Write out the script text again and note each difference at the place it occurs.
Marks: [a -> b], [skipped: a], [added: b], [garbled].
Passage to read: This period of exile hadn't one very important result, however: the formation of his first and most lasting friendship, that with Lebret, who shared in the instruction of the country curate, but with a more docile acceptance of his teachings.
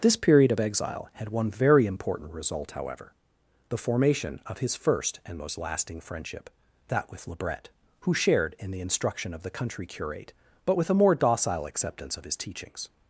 This period of exile [hadn't -> had] one very important result, however: the formation of his first and most lasting friendship, that with Lebret, who shared in the instruction of the country curate, but with a more docile acceptance of his teachings.